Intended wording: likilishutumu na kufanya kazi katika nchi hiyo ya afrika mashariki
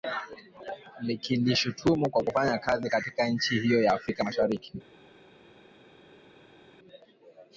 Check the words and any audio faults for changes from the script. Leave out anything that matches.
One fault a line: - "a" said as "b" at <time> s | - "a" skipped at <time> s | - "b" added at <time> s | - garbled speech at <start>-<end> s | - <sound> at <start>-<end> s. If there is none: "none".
- "na" said as "kwa" at 2.1 s